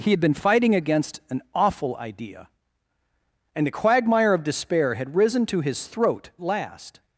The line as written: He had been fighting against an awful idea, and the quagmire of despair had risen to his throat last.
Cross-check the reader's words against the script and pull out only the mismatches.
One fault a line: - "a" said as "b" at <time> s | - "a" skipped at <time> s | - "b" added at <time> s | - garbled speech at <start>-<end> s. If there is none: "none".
none